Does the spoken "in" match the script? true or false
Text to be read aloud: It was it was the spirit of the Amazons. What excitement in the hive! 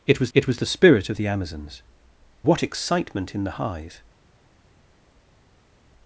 true